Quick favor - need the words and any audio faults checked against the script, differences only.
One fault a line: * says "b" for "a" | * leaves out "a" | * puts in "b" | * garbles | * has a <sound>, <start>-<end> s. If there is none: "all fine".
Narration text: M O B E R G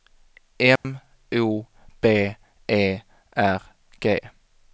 * has a dropout, 0.8-0.8 s